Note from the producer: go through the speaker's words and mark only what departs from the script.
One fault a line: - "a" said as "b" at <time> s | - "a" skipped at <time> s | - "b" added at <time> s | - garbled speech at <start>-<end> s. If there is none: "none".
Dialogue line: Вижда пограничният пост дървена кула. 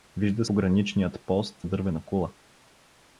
none